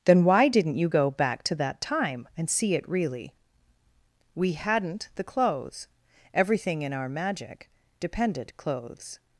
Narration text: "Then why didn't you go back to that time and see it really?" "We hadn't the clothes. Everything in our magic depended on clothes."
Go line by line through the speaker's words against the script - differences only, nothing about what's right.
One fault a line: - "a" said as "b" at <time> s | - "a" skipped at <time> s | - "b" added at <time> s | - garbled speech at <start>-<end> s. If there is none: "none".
- "on" skipped at 8.6 s